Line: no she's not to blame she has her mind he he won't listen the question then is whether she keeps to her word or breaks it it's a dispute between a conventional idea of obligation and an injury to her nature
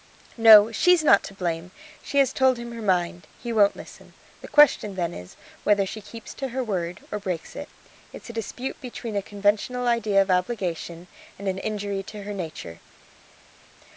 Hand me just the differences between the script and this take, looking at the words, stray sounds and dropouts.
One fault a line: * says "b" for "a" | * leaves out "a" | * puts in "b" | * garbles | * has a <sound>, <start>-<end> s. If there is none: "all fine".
* puts in "told him"
* leaves out "he"